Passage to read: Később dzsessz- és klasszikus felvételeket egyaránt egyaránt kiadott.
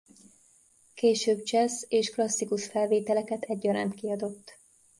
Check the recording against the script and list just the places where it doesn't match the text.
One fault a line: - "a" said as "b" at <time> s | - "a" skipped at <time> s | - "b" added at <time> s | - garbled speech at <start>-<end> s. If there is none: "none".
- "egyaránt" skipped at 3.9 s